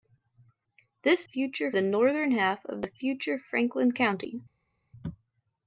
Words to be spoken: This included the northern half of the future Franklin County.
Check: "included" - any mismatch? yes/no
yes